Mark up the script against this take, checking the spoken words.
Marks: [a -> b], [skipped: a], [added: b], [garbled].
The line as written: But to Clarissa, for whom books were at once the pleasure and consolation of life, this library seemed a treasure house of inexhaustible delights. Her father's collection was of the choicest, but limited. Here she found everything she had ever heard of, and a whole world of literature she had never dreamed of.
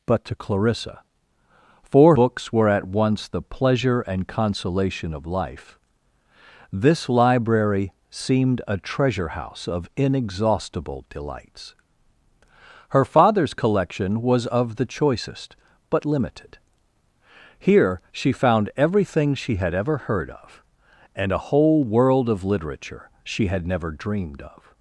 But to Clarissa, for [skipped: whom] books were at once the pleasure and consolation of life, this library seemed a treasure house of inexhaustible delights. Her father's collection was of the choicest, but limited. Here she found everything she had ever heard of, and a whole world of literature she had never dreamed of.